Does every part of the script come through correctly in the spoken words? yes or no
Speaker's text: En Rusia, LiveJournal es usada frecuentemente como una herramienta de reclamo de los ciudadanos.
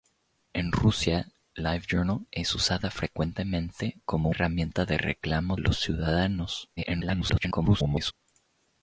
no